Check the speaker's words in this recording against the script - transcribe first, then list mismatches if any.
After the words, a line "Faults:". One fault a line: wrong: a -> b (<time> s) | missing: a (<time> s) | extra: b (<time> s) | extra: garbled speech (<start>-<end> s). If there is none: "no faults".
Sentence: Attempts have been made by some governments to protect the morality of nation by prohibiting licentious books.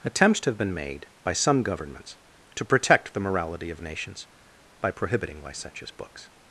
Attempts have been made by some governments to protect the morality of nations by prohibiting licentious books.
Faults:
wrong: nation -> nations (3.8 s)